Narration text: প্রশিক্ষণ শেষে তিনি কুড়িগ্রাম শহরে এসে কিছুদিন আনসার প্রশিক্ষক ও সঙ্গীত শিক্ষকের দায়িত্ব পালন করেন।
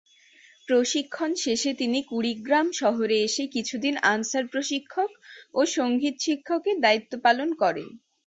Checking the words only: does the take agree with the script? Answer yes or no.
yes